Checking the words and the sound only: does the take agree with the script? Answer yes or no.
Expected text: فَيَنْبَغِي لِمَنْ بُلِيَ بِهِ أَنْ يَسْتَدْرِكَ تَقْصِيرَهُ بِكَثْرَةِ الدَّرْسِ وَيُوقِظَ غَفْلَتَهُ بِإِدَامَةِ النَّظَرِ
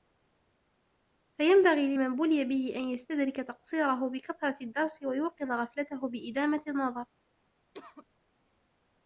no